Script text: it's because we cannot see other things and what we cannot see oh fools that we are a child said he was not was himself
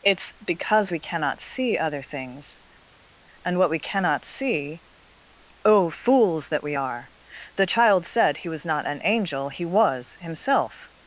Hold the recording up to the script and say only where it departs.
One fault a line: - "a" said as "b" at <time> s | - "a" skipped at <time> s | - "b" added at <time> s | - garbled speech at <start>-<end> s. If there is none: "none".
- "a" said as "the" at 7.6 s
- "an angel he" added at 8.9 s